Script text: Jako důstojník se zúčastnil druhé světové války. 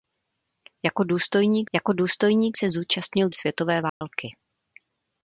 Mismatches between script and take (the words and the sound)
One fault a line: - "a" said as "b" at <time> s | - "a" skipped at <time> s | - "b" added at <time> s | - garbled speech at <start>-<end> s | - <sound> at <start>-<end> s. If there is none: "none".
- "jako důstojník" added at 1.7 s
- "druhé" skipped at 3.3 s
- dropout at 3.9-4.0 s